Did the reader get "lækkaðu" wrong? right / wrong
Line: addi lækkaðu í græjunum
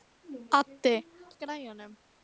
wrong